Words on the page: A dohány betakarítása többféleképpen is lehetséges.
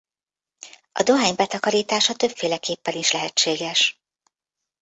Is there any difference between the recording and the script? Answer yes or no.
no